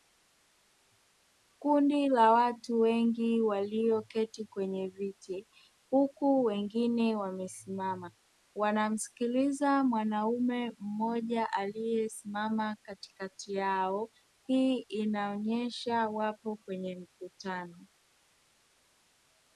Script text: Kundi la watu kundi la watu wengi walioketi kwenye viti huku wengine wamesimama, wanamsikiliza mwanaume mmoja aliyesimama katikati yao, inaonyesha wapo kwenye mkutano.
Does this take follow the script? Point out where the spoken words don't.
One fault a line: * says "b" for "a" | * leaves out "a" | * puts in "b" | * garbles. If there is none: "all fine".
* leaves out "kundi la watu"
* puts in "hii"